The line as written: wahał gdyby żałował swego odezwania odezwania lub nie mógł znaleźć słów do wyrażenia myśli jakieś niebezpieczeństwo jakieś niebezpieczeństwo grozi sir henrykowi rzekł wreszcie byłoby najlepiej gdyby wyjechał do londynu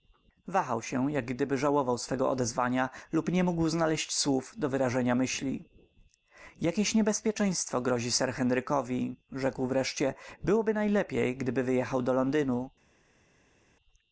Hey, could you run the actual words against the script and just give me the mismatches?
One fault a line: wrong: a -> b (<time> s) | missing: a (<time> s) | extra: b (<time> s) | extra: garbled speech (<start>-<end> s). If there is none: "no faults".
extra: się jak (0.8 s)
missing: odezwania (2.9 s)
missing: jakieś niebezpieczeństwo (7.8 s)